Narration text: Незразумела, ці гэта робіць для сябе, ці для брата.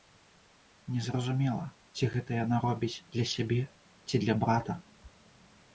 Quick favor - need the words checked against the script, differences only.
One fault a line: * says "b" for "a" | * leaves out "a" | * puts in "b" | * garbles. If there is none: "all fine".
* puts in "яна"